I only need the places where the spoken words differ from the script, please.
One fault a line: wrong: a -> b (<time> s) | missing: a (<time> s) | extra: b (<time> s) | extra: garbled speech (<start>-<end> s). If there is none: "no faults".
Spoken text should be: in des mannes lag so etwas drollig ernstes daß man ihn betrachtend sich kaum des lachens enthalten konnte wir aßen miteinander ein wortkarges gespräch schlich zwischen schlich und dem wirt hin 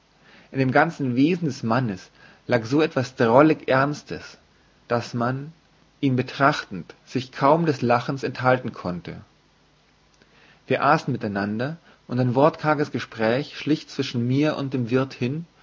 extra: dem ganzen wesen (0.6 s)
extra: und (12.1 s)
wrong: schlich -> mir (14.3 s)